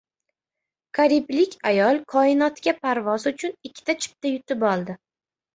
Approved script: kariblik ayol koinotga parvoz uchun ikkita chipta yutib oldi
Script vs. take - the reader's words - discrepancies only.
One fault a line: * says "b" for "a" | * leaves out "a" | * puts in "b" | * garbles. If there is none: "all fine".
all fine